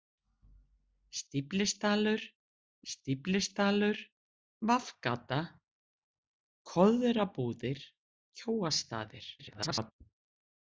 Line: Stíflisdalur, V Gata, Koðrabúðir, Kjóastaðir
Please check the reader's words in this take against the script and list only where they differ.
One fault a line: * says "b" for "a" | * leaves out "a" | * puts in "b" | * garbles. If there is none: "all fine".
* puts in "stíflisdalur"
* garbles